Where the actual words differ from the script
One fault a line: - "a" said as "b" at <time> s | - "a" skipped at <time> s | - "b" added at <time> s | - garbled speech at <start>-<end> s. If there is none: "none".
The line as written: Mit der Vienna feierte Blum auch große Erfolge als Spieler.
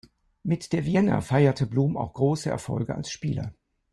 none